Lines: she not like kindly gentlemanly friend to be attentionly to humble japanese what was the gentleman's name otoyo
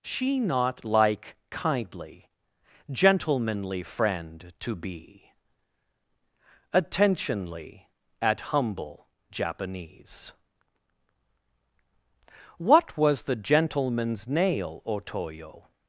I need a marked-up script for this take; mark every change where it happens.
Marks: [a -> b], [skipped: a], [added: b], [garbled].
she not like kindly gentlemanly friend to be attentionly [to -> at] humble japanese what was the gentleman's [name -> nail] otoyo